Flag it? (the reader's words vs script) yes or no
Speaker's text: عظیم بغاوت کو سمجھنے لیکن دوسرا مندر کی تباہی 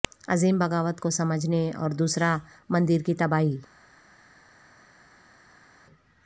yes